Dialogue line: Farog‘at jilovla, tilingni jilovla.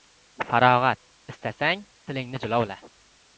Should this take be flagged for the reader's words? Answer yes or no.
yes